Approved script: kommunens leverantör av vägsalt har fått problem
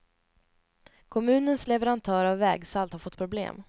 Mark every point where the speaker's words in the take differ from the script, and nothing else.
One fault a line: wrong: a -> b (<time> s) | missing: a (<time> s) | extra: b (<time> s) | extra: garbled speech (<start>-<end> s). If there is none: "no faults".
no faults